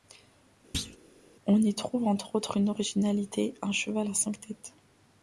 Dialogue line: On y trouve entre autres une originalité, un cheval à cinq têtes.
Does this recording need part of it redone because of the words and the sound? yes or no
yes